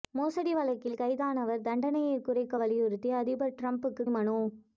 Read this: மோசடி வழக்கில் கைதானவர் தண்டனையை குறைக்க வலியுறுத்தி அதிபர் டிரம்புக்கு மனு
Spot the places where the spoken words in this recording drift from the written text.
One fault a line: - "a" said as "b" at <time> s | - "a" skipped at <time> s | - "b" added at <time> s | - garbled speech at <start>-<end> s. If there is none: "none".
none